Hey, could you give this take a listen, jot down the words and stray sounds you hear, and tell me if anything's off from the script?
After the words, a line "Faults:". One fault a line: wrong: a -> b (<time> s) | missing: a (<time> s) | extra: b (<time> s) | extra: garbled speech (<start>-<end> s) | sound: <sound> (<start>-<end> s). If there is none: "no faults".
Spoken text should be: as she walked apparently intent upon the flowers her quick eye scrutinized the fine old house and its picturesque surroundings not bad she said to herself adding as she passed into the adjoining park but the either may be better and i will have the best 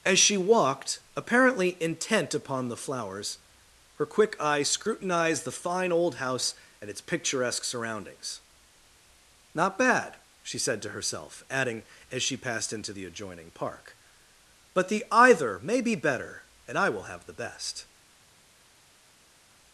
as she walked apparently intent upon the flowers her quick eye scrutinized the fine old house and its picturesque surroundings not bad she said to herself adding as she passed into the adjoining park but the either may be better and i will have the best
Faults:
no faults